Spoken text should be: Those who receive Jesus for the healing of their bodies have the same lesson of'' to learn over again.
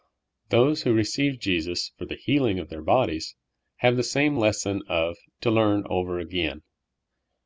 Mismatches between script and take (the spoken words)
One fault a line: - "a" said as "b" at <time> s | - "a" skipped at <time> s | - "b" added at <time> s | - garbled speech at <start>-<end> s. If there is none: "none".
none